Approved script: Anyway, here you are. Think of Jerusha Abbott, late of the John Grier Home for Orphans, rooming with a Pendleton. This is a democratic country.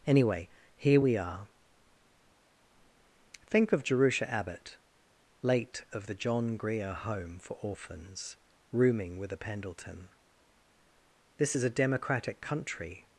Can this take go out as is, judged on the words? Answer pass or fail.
fail